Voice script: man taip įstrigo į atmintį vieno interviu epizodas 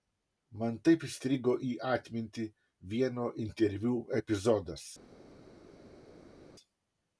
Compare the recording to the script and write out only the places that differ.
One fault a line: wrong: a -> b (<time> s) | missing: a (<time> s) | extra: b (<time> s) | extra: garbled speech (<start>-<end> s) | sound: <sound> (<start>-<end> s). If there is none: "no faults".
no faults